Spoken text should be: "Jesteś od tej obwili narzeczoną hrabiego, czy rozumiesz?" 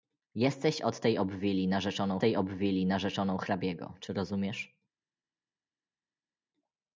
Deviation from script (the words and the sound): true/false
true